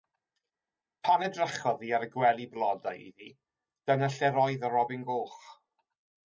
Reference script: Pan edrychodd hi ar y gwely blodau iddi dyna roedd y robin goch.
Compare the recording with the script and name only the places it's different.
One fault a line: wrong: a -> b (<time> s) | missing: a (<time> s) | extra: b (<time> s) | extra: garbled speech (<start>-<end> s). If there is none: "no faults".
extra: lle (4.2 s)